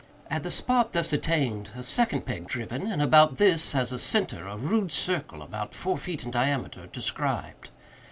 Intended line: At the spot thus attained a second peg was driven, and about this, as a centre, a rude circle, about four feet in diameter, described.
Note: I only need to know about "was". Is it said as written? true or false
false